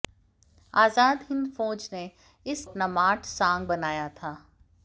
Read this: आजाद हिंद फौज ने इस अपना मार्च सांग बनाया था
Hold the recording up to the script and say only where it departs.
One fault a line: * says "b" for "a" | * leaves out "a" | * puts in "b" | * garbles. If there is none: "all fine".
all fine